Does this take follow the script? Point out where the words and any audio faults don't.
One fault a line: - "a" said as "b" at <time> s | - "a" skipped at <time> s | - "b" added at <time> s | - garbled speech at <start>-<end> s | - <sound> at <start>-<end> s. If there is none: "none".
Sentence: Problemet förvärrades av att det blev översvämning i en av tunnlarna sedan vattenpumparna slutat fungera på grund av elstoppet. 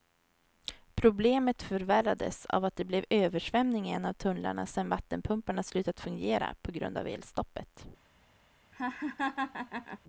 - laugh at 8.7-10.0 s